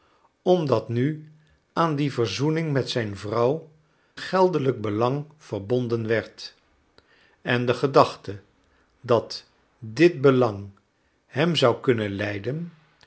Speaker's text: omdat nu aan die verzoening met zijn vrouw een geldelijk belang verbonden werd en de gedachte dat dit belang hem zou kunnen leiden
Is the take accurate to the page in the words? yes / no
no